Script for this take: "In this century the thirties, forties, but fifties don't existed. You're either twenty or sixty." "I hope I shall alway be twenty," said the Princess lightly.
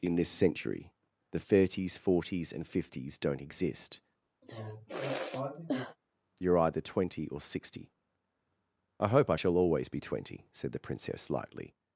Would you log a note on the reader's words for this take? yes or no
yes